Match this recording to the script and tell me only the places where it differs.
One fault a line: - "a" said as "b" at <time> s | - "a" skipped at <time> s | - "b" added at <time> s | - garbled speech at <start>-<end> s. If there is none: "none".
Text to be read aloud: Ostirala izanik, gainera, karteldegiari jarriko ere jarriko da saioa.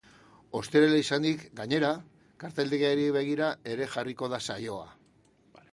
- "jarriko" said as "begira" at 3.2 s